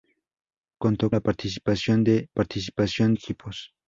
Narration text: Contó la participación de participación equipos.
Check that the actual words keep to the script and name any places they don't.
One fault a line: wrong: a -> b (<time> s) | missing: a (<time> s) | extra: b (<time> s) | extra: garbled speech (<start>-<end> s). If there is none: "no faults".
no faults